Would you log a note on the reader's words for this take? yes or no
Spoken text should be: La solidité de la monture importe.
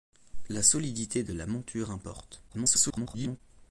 yes